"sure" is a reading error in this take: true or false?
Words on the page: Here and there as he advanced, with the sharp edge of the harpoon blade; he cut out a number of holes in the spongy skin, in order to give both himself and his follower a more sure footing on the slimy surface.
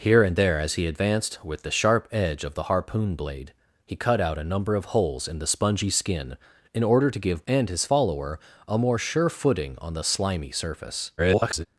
false